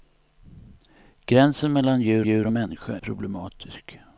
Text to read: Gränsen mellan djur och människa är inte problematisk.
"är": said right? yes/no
no